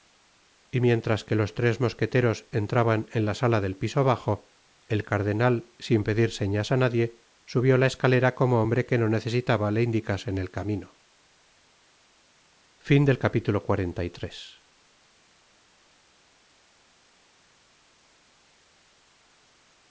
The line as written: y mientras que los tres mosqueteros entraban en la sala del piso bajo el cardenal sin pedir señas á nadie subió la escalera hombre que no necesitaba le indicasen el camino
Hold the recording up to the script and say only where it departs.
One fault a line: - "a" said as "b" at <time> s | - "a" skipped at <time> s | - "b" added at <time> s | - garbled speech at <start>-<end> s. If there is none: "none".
- "como" added at 8.4 s